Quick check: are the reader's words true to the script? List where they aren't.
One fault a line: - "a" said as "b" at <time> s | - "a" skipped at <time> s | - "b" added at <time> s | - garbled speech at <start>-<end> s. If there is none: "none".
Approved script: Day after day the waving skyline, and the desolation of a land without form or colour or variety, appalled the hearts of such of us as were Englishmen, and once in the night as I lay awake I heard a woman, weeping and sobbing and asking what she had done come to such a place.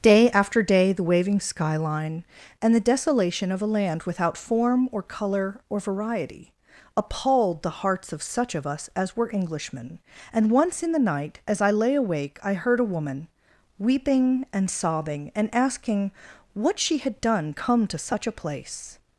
none